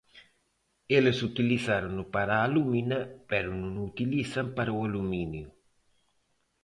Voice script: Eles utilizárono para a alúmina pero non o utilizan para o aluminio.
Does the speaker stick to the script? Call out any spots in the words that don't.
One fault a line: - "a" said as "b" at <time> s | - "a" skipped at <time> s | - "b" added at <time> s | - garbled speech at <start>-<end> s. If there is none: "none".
none